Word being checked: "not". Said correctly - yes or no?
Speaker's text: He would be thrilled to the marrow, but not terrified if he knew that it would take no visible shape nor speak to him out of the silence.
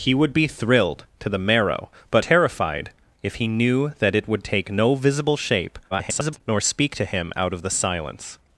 no